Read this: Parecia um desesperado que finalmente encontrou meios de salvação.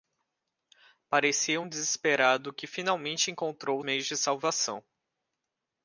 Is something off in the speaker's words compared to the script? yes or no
no